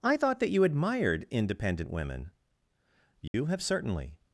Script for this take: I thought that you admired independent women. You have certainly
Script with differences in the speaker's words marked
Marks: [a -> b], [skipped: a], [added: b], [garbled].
I thought that you admired independent women. You have certainly